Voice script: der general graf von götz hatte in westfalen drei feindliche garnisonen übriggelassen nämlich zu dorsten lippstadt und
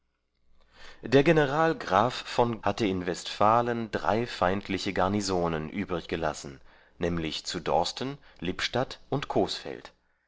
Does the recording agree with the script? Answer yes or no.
no